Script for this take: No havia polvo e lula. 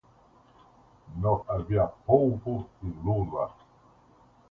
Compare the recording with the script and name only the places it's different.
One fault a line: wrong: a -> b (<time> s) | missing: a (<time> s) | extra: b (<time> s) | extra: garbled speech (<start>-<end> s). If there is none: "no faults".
no faults